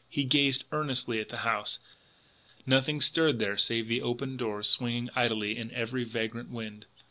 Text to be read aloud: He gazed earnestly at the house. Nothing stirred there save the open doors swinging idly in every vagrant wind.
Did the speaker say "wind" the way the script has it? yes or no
yes